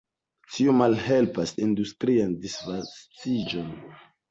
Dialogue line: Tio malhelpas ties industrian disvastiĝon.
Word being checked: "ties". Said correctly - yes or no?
no